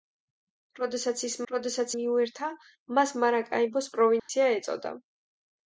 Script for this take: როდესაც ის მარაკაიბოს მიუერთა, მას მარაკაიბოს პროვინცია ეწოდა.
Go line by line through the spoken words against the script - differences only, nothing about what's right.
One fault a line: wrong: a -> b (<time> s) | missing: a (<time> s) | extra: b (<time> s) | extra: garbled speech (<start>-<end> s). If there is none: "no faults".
wrong: მარაკაიბოს -> როდესაც (1.5 s)